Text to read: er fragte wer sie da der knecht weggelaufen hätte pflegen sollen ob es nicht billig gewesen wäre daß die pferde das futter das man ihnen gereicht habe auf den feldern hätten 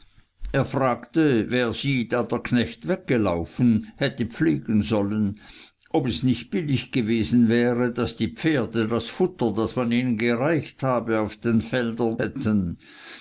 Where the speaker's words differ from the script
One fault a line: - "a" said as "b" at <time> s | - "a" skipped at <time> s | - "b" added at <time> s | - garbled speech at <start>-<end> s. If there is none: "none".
none